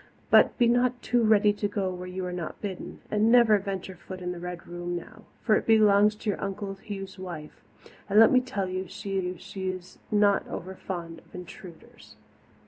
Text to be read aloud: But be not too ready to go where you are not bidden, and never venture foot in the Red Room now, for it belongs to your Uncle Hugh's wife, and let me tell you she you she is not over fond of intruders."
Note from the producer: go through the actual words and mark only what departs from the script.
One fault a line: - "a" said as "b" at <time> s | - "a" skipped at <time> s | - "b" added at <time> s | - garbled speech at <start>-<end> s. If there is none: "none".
none